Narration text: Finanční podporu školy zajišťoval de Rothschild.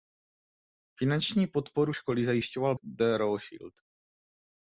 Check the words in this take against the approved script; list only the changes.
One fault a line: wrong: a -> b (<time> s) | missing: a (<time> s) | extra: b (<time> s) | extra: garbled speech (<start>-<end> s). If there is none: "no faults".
no faults